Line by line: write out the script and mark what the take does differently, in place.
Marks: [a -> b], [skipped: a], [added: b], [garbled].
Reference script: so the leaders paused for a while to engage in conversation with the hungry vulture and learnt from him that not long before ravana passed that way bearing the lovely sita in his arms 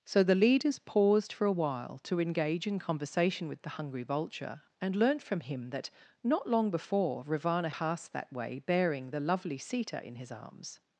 so the leaders paused for a while to engage in conversation with the hungry vulture and learnt from him that not long before ravana passed that way bearing the lovely sita in his arms